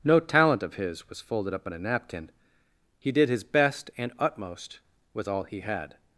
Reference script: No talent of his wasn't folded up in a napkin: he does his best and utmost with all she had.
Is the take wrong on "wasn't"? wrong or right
wrong